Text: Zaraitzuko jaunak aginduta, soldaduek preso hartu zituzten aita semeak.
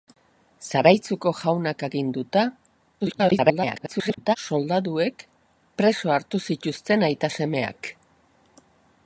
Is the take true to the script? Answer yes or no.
no